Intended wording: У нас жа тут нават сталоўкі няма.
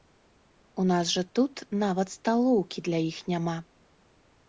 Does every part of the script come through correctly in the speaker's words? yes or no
no